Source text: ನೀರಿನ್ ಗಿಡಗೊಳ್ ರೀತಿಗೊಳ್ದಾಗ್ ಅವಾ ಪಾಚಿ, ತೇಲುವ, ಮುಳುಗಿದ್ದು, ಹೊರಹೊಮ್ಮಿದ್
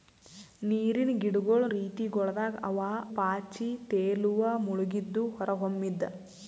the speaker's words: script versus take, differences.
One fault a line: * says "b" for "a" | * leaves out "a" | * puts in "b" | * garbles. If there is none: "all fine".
all fine